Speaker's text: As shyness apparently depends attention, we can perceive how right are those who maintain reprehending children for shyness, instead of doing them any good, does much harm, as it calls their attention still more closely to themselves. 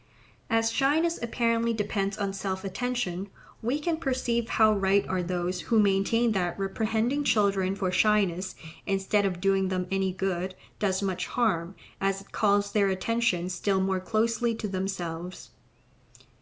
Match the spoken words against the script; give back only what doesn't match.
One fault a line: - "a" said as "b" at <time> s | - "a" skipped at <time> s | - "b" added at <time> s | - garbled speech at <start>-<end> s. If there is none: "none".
- "on self" added at 2.2 s
- "that" added at 6.3 s